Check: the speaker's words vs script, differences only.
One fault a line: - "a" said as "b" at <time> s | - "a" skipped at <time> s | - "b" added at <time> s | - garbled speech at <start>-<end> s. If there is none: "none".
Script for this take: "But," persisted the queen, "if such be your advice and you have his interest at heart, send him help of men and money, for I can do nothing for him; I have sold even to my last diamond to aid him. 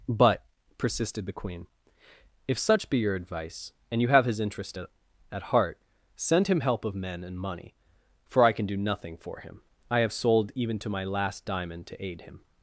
- "at" added at 5.3 s